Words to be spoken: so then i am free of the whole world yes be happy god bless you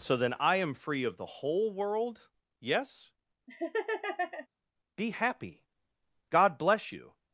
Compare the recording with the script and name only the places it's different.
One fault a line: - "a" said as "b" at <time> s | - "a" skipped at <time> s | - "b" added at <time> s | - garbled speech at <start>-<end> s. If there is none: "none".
none